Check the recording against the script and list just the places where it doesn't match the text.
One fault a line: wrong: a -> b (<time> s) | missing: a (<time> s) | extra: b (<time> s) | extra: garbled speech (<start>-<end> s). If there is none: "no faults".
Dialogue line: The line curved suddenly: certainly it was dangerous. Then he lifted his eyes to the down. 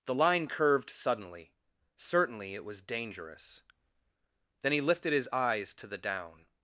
no faults